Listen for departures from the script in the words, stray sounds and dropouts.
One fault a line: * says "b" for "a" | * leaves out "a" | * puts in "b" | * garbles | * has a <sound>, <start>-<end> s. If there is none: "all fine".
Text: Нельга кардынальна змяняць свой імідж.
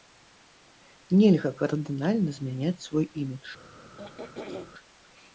* has a throat clearing, 4.0-4.7 s